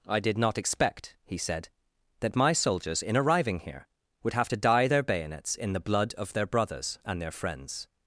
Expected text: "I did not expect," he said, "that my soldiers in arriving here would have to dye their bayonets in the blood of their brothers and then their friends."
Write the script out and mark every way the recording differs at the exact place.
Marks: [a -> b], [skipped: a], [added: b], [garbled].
"I did not expect," he said, "that my soldiers in arriving here would have to dye their bayonets in the blood of their brothers and [skipped: then] their friends."